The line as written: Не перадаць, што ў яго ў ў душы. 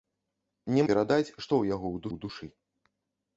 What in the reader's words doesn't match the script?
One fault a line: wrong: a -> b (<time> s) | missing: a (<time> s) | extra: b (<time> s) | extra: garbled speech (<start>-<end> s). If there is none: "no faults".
no faults